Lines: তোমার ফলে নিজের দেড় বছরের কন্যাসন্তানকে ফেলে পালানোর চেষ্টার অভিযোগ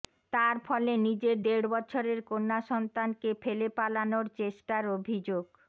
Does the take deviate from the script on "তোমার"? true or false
true